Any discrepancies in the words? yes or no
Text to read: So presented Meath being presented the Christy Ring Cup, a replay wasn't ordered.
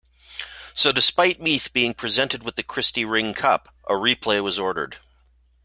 yes